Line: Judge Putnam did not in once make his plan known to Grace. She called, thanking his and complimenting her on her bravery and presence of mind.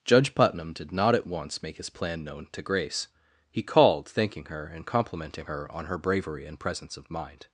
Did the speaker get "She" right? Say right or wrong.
wrong